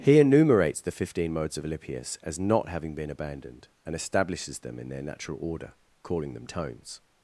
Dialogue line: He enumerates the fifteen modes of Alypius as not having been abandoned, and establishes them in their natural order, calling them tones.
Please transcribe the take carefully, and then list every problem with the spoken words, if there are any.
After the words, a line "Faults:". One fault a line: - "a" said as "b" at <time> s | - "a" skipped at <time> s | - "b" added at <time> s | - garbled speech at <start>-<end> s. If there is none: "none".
He enumerates the fifteen modes of Alypius as not having been abandoned, and establishes them in their natural order, calling them tones.
Faults:
none